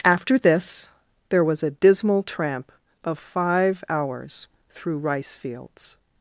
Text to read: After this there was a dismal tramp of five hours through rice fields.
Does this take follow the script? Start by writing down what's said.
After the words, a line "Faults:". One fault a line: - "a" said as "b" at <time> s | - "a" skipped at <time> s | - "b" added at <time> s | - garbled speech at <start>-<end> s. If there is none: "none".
After this there was a dismal tramp of five hours through rice fields.
Faults:
none